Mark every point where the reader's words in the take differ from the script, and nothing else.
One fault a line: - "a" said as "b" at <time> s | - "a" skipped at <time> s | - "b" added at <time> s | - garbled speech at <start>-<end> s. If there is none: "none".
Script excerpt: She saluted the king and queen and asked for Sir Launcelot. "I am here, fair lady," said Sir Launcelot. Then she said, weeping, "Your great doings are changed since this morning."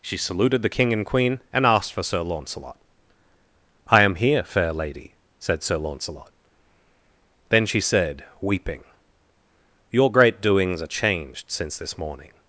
none